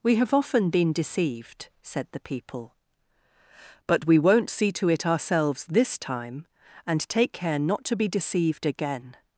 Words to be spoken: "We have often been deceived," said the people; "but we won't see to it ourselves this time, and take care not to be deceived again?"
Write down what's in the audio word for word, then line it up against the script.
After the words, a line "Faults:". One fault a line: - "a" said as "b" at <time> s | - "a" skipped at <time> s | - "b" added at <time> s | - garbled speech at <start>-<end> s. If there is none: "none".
"We have often been deceived," said the people; "but we won't see to it ourselves this time, and take care not to be deceived again?"
Faults:
none